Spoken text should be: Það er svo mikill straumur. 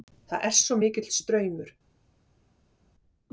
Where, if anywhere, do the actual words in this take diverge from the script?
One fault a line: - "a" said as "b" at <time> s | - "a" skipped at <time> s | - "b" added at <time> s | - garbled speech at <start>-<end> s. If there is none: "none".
none